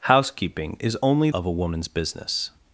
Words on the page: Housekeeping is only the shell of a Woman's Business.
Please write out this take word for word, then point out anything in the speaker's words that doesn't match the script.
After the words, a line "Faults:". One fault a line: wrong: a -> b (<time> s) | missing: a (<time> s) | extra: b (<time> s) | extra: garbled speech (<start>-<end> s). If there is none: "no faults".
Housekeeping is only of a Woman's Business.
Faults:
missing: the shell (1.3 s)